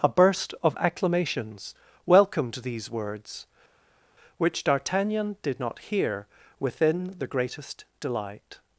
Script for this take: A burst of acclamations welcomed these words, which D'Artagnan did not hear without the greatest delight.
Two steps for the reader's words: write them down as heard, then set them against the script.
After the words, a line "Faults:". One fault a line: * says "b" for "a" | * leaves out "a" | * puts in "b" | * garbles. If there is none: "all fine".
A burst of acclamations welcomed these words, which D'Artagnan did not hear within the greatest delight.
Faults:
* says "within" for "without"